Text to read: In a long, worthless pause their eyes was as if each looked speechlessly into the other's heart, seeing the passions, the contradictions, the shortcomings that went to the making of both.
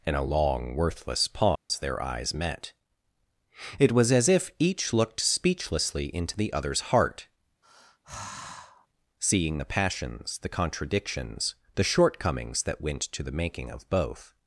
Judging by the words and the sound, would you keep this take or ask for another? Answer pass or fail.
fail